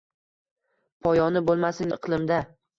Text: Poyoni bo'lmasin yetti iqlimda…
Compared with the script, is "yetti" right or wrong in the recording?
wrong